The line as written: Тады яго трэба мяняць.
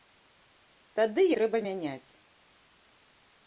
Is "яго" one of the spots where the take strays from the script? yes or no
yes